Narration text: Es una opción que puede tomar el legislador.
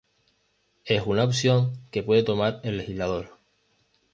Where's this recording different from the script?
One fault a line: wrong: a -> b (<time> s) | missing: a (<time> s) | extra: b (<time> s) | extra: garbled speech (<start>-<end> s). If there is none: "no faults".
no faults